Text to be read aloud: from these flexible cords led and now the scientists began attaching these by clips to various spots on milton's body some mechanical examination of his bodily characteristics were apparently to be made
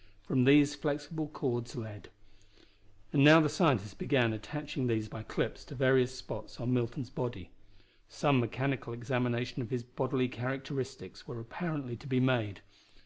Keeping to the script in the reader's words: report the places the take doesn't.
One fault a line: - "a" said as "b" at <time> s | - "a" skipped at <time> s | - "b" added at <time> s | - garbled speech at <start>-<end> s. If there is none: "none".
none